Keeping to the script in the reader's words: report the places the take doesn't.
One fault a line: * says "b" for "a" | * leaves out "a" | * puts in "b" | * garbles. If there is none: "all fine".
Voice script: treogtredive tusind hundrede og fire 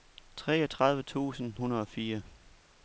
all fine